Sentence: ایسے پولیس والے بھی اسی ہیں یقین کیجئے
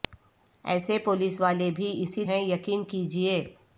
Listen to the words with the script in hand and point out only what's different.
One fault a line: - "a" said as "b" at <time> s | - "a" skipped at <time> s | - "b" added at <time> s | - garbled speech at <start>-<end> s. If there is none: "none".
none